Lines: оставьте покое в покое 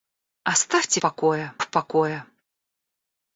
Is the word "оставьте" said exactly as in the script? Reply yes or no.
yes